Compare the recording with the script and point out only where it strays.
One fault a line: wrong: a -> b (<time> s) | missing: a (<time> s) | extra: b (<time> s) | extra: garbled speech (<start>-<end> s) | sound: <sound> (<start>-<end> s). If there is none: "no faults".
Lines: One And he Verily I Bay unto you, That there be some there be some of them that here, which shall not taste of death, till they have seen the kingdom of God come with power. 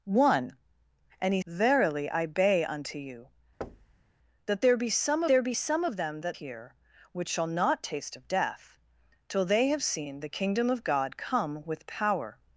sound: thud (3.6-4.0 s)